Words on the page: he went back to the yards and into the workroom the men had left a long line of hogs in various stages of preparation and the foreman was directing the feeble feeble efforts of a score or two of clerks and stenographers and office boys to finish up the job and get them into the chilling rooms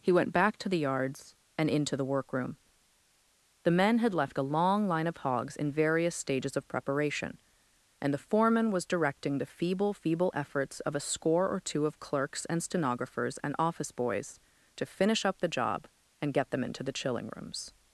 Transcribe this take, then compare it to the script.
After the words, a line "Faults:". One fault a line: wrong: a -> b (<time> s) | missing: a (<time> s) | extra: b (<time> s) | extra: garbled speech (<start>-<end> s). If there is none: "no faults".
he went back to the yards and into the workroom the men had left a long line of hogs in various stages of preparation and the foreman was directing the feeble feeble efforts of a score or two of clerks and stenographers and office boys to finish up the job and get them into the chilling rooms
Faults:
no faults